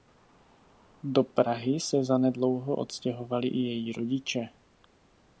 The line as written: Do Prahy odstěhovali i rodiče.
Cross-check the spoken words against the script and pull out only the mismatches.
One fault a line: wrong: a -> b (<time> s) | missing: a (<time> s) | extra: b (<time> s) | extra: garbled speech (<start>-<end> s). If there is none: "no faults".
extra: se zanedlouho (1.8 s)
extra: její (3.6 s)